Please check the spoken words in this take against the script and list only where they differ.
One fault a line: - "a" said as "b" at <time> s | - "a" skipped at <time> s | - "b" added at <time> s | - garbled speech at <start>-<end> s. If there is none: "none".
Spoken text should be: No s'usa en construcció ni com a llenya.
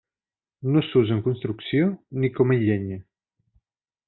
none